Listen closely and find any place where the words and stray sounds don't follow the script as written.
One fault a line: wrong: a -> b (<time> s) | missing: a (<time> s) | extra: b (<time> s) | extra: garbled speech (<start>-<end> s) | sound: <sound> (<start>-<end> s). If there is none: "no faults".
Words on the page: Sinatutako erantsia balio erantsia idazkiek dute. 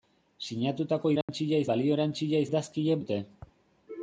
sound: dropout (1.2-1.3 s)